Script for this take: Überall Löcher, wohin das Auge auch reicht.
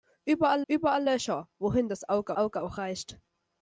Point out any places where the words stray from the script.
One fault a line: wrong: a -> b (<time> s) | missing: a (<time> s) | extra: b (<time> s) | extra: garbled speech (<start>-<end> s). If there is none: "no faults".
extra: überall (0.7 s)
extra: Auge (2.4 s)